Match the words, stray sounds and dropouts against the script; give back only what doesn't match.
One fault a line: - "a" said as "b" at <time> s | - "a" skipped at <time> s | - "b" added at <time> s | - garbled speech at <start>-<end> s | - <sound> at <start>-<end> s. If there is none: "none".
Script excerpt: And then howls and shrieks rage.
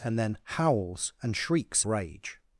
none